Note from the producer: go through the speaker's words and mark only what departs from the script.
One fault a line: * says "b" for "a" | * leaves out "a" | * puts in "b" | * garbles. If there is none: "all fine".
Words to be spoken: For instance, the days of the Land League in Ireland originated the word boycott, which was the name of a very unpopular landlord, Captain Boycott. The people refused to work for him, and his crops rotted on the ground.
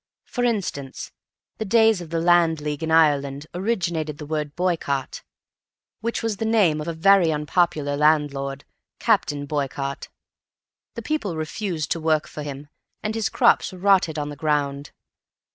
* leaves out "of"